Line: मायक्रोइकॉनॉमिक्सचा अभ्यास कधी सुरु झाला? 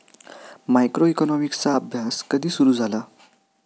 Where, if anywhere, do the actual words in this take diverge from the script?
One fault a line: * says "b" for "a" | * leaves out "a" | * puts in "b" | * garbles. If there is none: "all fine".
all fine